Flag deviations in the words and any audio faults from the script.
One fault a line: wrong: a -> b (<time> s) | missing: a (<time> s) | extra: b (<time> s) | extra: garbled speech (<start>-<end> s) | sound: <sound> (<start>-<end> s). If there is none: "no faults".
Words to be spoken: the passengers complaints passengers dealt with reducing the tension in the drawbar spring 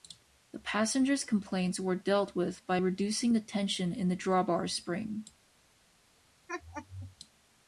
wrong: passengers -> were (1.8 s)
extra: by (2.7 s)
sound: laugh (6.5-7.2 s)